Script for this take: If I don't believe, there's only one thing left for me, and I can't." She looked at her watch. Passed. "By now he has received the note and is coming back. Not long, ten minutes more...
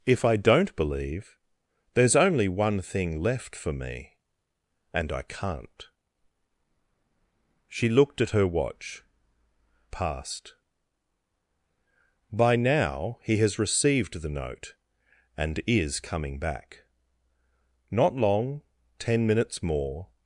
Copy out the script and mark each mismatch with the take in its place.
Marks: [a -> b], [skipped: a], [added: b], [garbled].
If I don't believe, there's only one thing left for me, and I can't." She looked at her watch. Passed. "By now he has received the note and is coming back. Not long, ten minutes more...